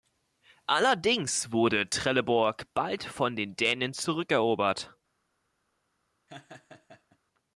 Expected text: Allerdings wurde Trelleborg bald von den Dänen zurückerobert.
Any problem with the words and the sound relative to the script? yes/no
yes